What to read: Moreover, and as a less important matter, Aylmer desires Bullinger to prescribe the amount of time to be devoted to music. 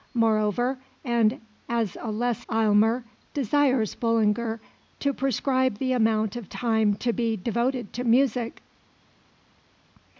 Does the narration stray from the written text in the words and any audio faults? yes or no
yes